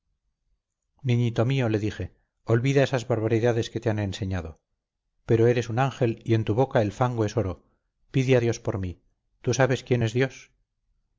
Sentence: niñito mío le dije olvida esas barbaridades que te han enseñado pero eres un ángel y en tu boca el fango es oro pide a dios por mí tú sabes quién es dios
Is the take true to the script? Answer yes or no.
yes